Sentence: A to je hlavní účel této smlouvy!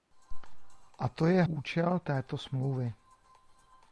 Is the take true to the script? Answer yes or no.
no